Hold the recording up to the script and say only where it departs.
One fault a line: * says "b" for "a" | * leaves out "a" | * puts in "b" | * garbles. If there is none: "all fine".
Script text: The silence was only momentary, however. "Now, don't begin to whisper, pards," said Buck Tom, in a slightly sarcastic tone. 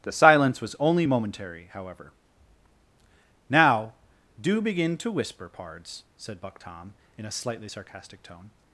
* says "do" for "don't"